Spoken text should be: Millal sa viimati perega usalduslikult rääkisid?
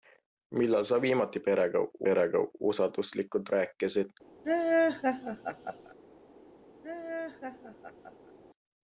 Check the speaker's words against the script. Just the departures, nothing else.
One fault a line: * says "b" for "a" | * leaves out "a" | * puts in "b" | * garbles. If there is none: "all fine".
* puts in "perega"